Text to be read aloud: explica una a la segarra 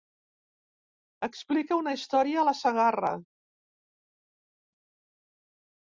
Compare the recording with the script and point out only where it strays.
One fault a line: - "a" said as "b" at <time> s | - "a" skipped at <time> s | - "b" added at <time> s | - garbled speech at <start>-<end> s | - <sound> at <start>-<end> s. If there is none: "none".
- "història" added at 2.0 s